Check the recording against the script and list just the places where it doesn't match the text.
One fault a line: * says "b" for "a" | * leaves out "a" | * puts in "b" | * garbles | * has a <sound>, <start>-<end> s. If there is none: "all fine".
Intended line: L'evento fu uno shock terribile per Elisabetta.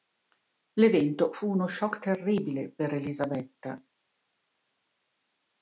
all fine